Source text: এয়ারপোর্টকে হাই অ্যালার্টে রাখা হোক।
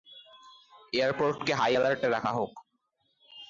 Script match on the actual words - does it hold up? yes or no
yes